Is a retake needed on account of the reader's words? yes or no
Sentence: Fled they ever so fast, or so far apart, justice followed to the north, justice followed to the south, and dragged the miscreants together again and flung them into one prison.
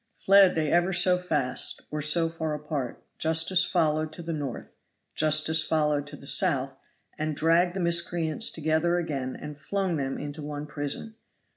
no